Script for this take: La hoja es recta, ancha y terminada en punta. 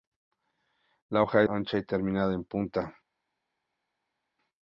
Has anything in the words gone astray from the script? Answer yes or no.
yes